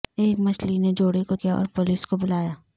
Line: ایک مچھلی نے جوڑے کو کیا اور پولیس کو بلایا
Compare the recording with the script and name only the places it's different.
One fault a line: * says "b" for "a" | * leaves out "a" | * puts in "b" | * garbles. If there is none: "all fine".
all fine